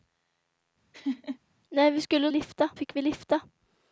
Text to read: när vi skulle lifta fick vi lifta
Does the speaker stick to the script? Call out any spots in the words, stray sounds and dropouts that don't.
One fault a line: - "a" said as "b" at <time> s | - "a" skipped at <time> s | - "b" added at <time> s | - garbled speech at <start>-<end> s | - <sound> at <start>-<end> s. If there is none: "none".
- laugh at 0.9-1.4 s